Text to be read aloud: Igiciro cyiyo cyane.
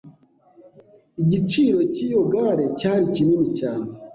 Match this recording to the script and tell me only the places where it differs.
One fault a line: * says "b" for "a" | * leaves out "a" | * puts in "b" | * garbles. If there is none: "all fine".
* puts in "gare cyari kinini"